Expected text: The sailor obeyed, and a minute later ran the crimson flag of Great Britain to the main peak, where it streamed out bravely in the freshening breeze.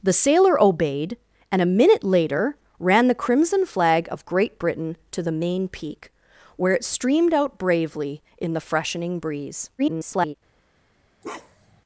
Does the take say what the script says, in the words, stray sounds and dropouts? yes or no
no